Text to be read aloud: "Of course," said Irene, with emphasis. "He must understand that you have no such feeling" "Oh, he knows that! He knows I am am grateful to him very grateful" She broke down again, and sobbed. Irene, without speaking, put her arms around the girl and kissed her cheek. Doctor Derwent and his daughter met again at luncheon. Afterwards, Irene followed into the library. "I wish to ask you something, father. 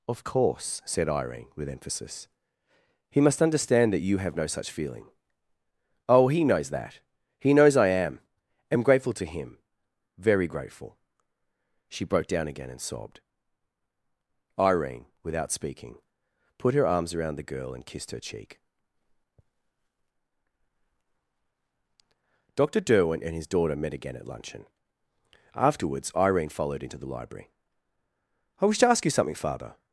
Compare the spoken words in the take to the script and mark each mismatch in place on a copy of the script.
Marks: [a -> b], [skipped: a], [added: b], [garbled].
"Of course," said Irene, with emphasis. "He must understand that you have no such feeling" "Oh, he knows that! He knows I am am grateful to him very grateful" She broke down again, and sobbed. Irene, without speaking, put her arms around the girl and kissed her cheek. Doctor Derwent and his daughter met again at luncheon. Afterwards, Irene followed into the library. "I wish to ask you something, father.